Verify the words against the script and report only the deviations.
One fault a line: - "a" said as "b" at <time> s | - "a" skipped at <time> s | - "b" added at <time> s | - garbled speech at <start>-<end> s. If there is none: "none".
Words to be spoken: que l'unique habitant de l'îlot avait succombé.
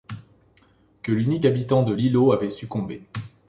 none